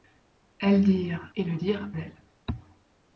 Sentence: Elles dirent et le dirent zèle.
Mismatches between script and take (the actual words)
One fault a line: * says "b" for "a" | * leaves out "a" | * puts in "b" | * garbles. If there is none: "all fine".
all fine